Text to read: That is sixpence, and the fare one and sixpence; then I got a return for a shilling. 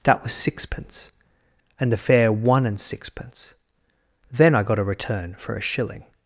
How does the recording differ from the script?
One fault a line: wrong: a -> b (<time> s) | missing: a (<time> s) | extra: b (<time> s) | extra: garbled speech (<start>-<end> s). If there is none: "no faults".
wrong: is -> was (0.2 s)